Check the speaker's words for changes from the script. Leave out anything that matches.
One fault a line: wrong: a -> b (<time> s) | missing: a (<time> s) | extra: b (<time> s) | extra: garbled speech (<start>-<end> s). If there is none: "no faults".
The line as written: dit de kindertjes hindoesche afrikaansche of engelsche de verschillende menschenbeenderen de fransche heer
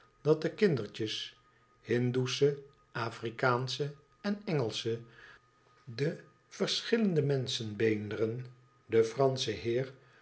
wrong: dit -> dat (0.2 s)
wrong: of -> en (4.2 s)